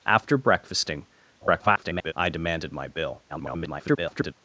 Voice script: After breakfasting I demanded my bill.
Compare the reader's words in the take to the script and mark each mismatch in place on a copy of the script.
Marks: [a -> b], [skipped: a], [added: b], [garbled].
After breakfasting [garbled] I demanded my bill. [garbled]